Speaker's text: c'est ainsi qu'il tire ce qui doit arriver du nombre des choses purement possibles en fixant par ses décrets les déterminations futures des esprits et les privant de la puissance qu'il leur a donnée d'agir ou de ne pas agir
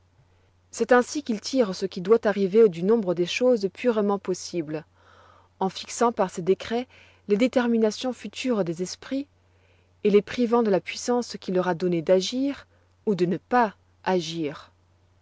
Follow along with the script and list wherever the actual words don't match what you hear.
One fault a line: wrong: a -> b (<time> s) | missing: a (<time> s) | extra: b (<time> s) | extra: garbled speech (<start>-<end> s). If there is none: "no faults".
no faults